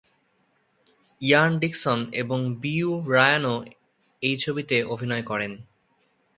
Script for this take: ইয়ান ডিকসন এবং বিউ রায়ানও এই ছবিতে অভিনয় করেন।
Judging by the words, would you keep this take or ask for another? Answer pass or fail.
pass